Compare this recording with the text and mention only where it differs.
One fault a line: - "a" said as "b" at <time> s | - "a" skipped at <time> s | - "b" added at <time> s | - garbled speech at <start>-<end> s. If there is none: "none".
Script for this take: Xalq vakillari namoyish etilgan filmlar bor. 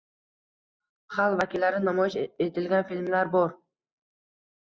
none